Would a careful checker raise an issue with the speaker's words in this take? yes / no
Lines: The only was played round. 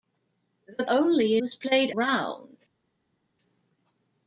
no